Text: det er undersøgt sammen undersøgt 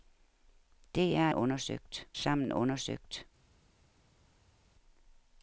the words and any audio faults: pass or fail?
pass